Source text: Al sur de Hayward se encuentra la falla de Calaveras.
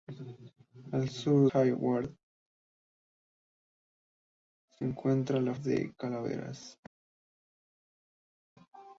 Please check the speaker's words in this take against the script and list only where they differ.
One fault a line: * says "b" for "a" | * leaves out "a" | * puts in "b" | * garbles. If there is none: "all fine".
* leaves out "de"
* leaves out "falla"